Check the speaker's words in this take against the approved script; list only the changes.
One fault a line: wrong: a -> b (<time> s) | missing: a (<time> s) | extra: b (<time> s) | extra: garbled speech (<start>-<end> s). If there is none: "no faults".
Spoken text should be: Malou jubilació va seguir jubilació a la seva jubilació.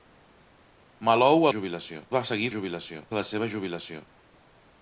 no faults